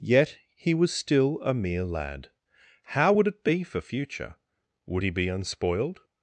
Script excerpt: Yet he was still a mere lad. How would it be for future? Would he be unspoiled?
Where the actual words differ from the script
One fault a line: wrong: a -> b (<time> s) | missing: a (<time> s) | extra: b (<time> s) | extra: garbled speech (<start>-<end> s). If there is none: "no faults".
no faults